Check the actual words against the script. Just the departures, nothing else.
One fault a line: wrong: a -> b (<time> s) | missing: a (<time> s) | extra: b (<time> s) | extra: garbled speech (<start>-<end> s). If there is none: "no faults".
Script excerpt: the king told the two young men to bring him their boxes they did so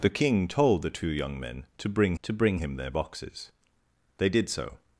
extra: to bring (2.2 s)